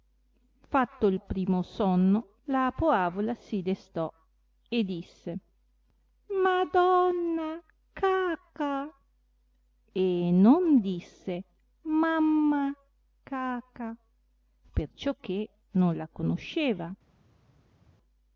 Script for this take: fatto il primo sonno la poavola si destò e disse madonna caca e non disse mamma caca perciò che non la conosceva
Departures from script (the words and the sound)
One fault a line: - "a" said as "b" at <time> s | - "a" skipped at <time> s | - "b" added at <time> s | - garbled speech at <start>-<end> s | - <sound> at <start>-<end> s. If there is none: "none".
none